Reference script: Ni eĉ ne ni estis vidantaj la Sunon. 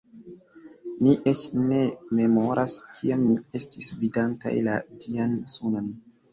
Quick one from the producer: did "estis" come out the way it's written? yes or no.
yes